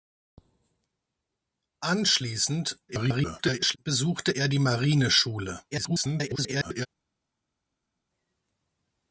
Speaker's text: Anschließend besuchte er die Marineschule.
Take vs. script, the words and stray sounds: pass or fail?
fail